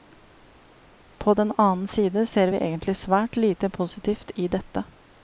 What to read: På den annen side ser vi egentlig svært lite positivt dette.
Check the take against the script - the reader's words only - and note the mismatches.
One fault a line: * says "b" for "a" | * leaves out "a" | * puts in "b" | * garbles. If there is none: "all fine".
* puts in "i"